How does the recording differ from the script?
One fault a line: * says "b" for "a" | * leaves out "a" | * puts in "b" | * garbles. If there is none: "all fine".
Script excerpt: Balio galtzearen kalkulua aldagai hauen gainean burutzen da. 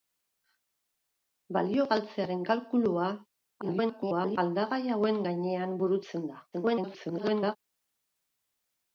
* garbles
* garbles